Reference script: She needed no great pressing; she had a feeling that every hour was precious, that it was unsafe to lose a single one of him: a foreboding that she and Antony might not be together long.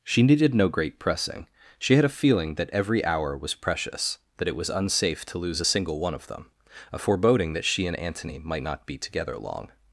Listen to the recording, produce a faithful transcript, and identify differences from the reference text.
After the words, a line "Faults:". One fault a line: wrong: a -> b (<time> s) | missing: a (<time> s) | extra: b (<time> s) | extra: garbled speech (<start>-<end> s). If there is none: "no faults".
She needed no great pressing; she had a feeling that every hour was precious, that it was unsafe to lose a single one of them: a foreboding that she and Antony might not be together long.
Faults:
wrong: him -> them (6.3 s)